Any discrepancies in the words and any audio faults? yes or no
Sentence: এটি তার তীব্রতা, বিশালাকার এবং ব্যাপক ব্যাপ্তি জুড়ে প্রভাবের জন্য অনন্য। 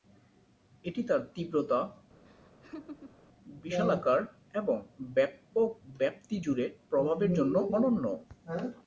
yes